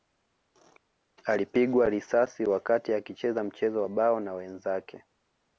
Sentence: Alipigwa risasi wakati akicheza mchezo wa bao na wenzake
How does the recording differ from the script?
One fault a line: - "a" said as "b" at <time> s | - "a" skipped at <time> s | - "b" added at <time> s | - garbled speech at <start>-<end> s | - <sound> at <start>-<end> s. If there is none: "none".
none